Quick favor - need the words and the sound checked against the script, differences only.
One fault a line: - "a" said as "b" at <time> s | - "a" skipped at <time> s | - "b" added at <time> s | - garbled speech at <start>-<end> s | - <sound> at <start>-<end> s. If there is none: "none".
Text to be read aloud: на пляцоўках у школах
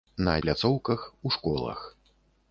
none